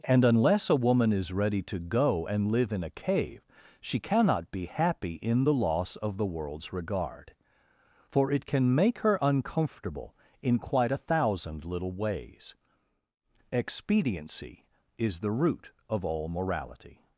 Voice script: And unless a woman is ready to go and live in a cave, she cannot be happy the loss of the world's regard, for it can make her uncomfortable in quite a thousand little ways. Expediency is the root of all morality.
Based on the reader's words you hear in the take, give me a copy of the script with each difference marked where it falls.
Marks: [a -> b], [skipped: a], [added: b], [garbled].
And unless a woman is ready to go and live in a cave, she cannot be happy [added: in] the loss of the world's regard, for it can make her uncomfortable in quite a thousand little ways. Expediency is the root of all morality.